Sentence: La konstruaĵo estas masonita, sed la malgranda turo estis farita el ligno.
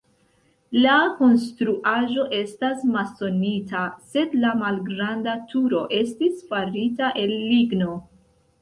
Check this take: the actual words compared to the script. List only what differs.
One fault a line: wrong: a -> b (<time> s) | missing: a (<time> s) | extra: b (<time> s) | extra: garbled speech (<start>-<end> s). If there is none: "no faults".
no faults